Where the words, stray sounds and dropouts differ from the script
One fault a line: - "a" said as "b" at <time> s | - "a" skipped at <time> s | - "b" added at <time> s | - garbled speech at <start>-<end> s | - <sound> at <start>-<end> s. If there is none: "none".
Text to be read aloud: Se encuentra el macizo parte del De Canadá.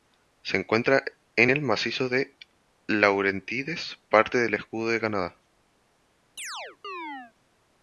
- "en" added at 1.4 s
- "de Laurentides" added at 2.1 s
- "Escudo" added at 4.5 s
- chirp at 6.4-7.3 s